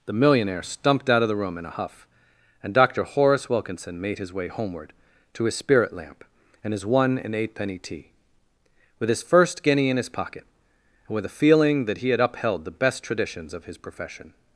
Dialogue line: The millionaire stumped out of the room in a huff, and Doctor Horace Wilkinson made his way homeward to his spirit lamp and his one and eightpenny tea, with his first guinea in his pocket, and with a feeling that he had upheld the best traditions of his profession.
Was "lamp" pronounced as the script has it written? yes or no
yes